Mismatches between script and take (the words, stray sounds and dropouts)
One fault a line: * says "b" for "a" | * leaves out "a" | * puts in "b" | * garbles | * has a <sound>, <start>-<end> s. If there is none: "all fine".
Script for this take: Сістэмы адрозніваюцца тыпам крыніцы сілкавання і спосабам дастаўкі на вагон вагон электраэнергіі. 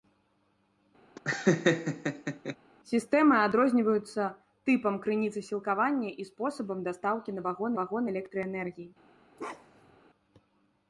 * has a laugh, 1.2-2.6 s
* has a bark, 9.4-10.0 s